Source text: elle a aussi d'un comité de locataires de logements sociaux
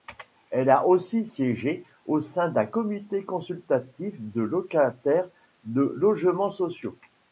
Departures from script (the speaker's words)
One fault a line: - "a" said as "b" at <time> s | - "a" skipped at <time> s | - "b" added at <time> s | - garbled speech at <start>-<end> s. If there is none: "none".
- "siégé au sein" added at 1.2 s
- "consultatif" added at 3.2 s